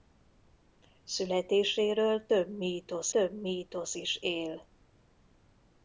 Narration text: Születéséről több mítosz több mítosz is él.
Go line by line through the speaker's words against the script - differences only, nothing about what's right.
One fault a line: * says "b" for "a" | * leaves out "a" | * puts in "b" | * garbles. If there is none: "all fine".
all fine